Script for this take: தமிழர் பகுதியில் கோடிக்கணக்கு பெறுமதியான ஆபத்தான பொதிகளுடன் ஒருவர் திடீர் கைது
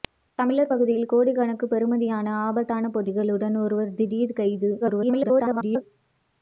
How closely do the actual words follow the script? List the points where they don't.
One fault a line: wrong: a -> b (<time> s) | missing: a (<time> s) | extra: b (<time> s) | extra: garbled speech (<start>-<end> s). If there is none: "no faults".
extra: garbled speech (4.8-5.8 s)